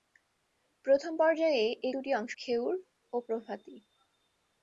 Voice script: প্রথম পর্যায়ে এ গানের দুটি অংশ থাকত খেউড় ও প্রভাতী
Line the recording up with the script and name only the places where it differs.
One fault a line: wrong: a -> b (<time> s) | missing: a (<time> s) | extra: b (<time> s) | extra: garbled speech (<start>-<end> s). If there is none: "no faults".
missing: গানের (1.9 s)
missing: থাকত (2.3 s)